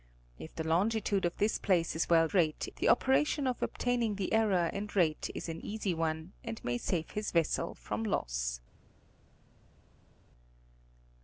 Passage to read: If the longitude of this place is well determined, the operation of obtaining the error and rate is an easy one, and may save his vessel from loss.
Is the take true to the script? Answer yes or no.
no